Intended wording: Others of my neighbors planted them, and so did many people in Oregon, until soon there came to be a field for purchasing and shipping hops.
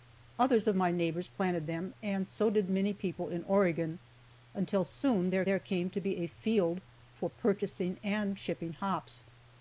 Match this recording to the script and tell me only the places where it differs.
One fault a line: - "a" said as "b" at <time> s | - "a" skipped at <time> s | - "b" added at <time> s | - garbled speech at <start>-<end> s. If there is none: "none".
- "there" added at 5.4 s